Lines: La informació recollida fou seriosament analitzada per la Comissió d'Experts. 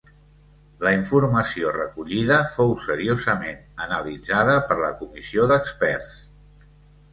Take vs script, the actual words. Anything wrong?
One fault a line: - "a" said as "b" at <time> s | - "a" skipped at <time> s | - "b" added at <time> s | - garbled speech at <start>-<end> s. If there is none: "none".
none